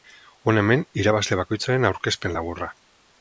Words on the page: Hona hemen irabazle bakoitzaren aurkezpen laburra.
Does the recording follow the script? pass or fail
pass